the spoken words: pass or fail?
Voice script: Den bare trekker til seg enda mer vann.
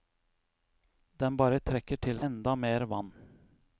fail